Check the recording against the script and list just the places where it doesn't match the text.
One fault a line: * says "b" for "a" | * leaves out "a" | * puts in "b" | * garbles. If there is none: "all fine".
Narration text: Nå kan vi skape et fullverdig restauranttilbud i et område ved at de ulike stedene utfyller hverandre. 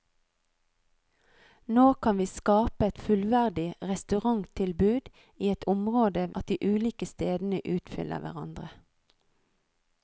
* leaves out "ved"